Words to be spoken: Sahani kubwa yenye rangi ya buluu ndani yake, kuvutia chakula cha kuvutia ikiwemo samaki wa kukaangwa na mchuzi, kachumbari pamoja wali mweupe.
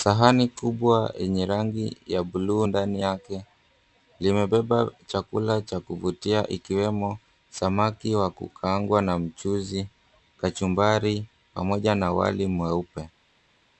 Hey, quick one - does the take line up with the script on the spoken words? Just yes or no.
no